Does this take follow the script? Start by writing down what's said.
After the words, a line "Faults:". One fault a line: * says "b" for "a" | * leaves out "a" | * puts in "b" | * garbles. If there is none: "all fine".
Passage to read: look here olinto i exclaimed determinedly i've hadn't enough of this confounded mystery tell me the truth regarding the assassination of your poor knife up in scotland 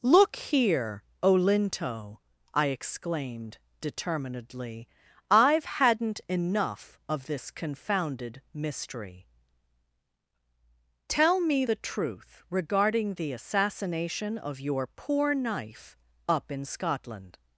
look here olinto i exclaimed determinedly i've hadn't enough of this confounded mystery tell me the truth regarding the assassination of your poor knife up in scotland
Faults:
all fine